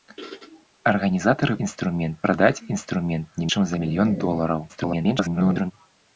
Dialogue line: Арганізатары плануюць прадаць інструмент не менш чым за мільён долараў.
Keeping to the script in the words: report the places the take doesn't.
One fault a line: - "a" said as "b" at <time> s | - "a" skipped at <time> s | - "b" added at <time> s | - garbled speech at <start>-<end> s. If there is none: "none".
- "плануюць" said as "інструмент" at 1.7 s
- "менш" skipped at 3.5 s
- garbled speech at 4.7-5.7 s